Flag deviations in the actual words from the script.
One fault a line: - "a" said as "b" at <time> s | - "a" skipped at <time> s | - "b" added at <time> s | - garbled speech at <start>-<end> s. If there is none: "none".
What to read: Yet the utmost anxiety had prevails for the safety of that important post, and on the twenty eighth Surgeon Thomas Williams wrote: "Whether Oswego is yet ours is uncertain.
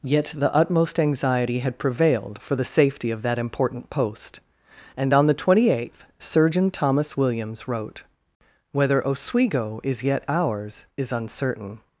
- "prevails" said as "prevailed" at 1.8 s